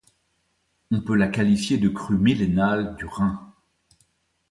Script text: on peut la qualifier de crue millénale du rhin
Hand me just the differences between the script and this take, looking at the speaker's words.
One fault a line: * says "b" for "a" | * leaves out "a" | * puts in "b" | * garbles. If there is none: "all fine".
all fine